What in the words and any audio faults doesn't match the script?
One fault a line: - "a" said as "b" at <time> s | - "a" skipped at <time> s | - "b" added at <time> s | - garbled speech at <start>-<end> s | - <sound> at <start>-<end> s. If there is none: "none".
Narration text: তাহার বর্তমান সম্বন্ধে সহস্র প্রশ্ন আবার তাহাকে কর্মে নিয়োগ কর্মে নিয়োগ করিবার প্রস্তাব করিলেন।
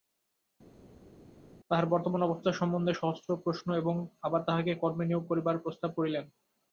- "অবস্থা" added at 2.2 s
- "এবং" added at 3.7 s
- "কর্মে নিয়োগ" skipped at 5.2 s